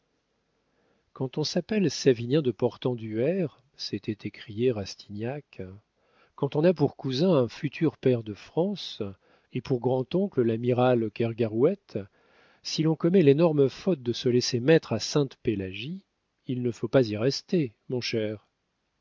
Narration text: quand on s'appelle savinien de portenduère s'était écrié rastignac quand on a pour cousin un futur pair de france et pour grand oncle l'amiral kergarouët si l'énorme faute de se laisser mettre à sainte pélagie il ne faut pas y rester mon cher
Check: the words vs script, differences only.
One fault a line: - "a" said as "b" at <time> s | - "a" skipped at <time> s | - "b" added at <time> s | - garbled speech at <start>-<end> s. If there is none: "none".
- "l'on commet" added at 12.8 s